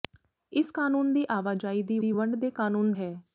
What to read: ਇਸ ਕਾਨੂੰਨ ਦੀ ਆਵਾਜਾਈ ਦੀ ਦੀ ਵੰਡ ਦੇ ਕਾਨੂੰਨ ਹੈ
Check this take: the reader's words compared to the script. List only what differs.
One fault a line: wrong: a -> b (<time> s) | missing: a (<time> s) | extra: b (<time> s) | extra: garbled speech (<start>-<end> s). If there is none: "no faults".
no faults